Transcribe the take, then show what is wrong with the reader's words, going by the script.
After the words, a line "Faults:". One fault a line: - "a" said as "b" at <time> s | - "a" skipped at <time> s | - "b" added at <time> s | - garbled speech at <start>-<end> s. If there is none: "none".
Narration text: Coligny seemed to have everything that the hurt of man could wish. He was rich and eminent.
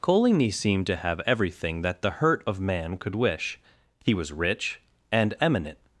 Coligny seemed to have everything that the hurt of man could wish. He was rich and eminent.
Faults:
none